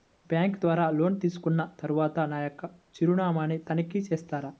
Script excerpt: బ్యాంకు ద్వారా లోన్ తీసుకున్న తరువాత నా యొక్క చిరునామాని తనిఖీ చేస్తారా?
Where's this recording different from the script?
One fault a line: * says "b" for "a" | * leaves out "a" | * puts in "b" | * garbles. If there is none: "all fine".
all fine